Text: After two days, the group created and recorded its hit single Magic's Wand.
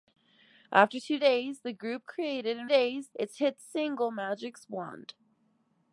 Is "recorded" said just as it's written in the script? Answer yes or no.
no